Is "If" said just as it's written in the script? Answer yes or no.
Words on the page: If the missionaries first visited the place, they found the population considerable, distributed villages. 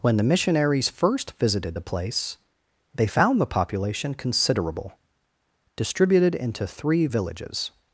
no